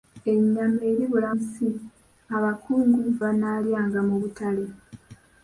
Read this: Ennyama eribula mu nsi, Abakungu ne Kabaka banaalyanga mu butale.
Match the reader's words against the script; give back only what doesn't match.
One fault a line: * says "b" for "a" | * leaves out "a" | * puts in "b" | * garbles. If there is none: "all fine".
* leaves out "mu"
* leaves out "ne Kabaka"